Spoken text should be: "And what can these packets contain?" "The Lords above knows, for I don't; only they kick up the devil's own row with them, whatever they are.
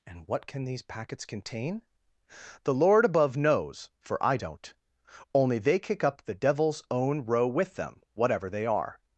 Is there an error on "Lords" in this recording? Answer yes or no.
yes